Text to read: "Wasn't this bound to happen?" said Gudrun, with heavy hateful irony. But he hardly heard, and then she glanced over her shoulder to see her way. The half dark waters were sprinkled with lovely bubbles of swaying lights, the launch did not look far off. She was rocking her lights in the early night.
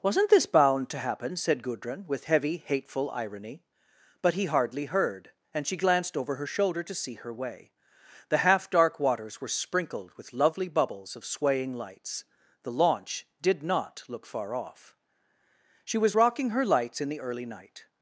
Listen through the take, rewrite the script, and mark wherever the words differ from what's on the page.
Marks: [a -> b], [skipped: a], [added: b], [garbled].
"Wasn't this bound to happen?" said Gudrun, with heavy hateful irony. But he hardly heard, and [skipped: then] she glanced over her shoulder to see her way. The half dark waters were sprinkled with lovely bubbles of swaying lights, the launch did not look far off. She was rocking her lights in the early night.